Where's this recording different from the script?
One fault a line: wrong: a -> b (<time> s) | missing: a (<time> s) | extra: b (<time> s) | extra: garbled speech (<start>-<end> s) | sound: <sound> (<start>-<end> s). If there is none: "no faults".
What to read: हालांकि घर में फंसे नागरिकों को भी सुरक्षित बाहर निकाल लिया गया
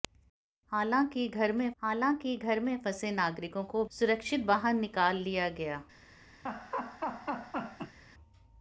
extra: हालांकि घर में (1.8 s)
missing: भी (3.9 s)
sound: laugh (6.5-8.0 s)